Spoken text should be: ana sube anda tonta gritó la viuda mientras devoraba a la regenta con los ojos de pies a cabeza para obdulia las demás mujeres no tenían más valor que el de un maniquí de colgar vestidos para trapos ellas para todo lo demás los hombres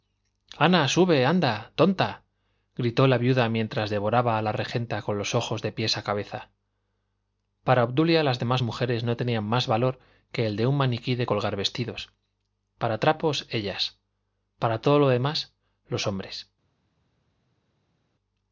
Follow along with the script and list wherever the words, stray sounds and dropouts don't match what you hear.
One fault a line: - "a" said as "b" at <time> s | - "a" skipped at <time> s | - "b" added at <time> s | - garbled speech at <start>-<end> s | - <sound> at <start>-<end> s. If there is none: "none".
none